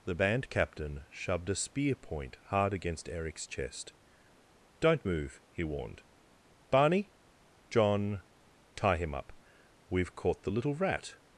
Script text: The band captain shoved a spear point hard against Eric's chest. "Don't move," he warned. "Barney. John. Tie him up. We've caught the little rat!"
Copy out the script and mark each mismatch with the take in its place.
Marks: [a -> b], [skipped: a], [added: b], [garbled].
The band captain shoved a spear point hard against Eric's chest. "Don't move," he warned. "Barney. John. Tie him up. We've caught the little rat!"